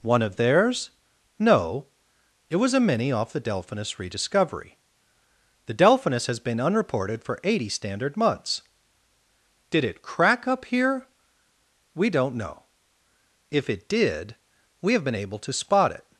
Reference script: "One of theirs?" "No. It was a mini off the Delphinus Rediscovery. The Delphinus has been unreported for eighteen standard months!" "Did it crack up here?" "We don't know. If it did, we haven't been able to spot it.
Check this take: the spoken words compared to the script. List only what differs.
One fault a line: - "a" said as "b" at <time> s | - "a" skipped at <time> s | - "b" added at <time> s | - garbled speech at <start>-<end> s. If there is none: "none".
- "eighteen" said as "eighty" at 7.4 s
- "haven't" said as "have" at 14.9 s